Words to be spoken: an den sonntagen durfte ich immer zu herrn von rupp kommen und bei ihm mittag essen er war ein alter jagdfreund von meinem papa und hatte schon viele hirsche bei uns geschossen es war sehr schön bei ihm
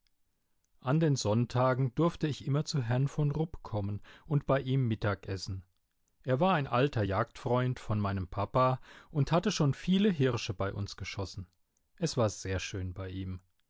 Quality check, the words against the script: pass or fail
pass